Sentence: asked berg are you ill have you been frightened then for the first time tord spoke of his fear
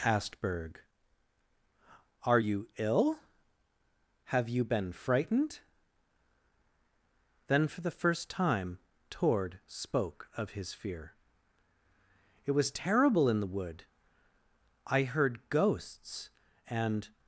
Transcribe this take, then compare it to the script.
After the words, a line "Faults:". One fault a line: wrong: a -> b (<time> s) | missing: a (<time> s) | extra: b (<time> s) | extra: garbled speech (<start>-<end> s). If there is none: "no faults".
asked berg are you ill have you been frightened then for the first time tord spoke of his fear it was terrible in the wood i heard ghosts and
Faults:
extra: it was terrible in the wood i heard ghosts and (12.4 s)